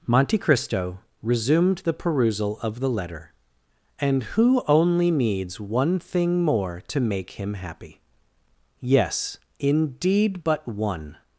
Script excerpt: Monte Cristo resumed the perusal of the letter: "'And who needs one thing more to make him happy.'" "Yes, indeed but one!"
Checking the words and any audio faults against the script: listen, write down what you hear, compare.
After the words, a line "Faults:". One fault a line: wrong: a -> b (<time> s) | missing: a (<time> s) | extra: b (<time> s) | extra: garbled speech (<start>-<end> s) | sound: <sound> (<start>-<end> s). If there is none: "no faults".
Monte Cristo resumed the perusal of the letter: "'And who only needs one thing more to make him happy.'" "Yes, indeed but one!"
Faults:
extra: only (4.7 s)